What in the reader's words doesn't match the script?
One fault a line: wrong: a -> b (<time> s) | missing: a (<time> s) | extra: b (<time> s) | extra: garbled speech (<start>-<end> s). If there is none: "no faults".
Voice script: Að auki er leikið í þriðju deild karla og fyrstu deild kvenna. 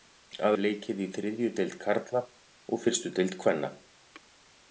missing: auki (0.6 s)